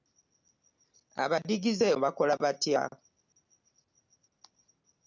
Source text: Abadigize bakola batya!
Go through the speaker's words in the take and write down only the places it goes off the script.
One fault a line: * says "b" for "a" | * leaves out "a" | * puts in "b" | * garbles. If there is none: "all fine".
all fine